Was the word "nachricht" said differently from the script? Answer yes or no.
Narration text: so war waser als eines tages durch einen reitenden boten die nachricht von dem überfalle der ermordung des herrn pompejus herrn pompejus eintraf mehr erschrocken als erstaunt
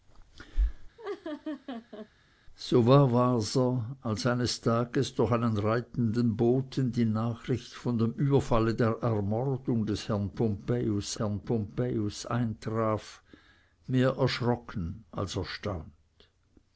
no